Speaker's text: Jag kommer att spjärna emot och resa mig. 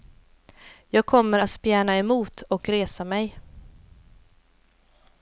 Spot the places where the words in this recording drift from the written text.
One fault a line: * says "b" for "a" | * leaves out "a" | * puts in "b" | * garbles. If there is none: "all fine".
all fine